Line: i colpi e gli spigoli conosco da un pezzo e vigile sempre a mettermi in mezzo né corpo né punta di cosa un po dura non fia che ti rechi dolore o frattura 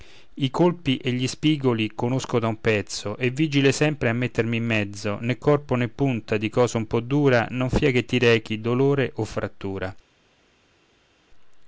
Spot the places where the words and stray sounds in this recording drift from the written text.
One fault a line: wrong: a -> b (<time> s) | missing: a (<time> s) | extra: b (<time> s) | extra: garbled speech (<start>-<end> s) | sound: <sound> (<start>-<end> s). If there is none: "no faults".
no faults